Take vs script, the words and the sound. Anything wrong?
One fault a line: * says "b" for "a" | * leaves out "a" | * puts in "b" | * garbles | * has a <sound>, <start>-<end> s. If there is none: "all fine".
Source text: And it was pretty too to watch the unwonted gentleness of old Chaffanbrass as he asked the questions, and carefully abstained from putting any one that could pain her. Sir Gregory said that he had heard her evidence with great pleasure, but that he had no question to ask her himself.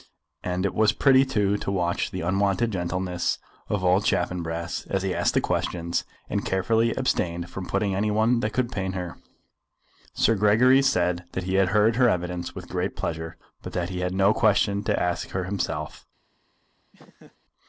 * has a laugh, 16.9-17.4 s